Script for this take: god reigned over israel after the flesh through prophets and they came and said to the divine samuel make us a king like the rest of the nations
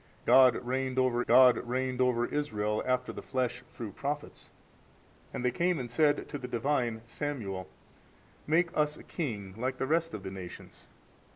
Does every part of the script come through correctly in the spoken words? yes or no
no